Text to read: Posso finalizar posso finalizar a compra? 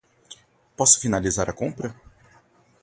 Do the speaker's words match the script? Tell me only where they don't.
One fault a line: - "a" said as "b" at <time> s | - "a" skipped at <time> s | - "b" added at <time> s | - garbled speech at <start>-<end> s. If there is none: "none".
- "posso finalizar" skipped at 1.5 s